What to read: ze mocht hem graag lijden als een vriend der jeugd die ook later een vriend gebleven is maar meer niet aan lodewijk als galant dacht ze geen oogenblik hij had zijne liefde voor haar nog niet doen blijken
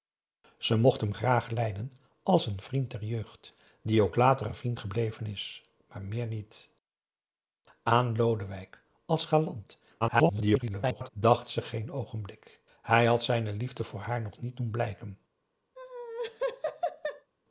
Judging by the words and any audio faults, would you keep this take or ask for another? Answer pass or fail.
fail